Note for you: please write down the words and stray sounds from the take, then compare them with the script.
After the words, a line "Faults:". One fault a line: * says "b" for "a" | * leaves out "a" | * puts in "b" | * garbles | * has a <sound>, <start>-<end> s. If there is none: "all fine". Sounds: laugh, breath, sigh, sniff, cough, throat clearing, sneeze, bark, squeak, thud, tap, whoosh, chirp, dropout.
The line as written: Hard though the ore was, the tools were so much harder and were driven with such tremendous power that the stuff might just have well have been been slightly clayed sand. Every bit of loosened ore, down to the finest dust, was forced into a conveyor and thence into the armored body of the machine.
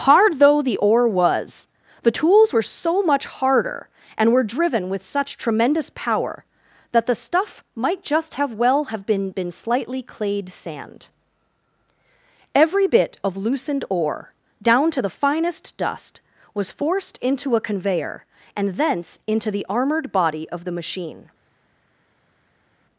Hard though the ore was, the tools were so much harder and were driven with such tremendous power that the stuff might just have well have been been slightly clayed sand. Every bit of loosened ore, down to the finest dust, was forced into a conveyor and thence into the armored body of the machine.
Faults:
all fine